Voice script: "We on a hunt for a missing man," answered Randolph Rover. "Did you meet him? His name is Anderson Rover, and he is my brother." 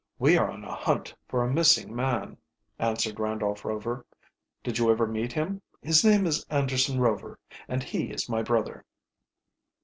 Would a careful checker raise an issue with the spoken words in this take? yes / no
yes